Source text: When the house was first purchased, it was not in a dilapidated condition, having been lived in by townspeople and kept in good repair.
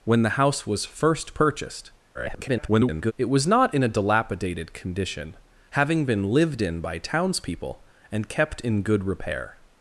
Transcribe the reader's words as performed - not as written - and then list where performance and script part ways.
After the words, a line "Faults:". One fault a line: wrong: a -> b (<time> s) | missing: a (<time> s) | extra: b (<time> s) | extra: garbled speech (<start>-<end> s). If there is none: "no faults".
When the house was first purchased, [garbled] it was not in a dilapidated condition, having been lived in by townspeople and kept in good repair.
Faults:
extra: garbled speech (2.1-3.1 s)